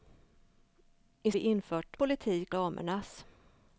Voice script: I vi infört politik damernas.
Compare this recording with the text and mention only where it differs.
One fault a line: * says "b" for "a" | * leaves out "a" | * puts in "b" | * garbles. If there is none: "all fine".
all fine